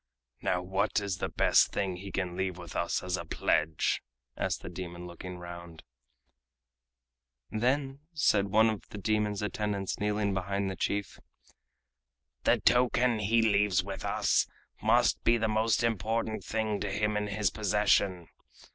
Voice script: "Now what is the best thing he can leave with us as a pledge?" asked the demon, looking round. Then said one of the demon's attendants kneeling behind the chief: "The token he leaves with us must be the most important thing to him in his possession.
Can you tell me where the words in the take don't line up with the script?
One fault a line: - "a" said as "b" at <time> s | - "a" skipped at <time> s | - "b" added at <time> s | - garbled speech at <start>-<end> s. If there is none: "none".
none